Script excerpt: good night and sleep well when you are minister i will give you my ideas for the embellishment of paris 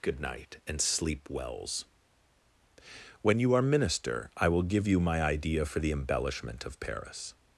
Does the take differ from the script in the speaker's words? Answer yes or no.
yes